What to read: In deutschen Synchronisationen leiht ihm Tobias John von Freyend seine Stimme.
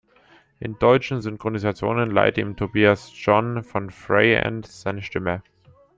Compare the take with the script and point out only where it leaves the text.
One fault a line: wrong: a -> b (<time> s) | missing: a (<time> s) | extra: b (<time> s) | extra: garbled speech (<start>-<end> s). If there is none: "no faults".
no faults